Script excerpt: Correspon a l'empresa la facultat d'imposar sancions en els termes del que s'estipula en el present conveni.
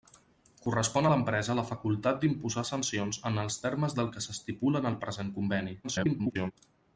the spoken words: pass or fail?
fail